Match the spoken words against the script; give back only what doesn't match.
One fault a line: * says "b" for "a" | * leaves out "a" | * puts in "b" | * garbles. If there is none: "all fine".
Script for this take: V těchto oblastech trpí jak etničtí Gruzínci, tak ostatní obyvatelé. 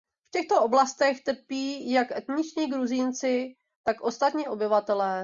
all fine